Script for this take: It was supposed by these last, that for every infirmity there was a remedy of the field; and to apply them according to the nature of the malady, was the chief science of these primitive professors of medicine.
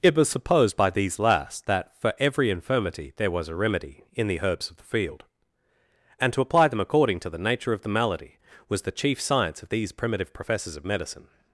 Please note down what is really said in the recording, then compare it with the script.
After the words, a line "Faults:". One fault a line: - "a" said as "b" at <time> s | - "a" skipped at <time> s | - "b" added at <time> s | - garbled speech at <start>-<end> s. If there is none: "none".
It was supposed by these last, that for every infirmity there was a remedy in the herbs of the field; and to apply them according to the nature of the malady, was the chief science of these primitive professors of medicine.
Faults:
- "in the herbs" added at 4.1 s